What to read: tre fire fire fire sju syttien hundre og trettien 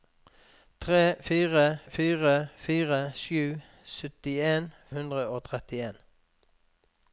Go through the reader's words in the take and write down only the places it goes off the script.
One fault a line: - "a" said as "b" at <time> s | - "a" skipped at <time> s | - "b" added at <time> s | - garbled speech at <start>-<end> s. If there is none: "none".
none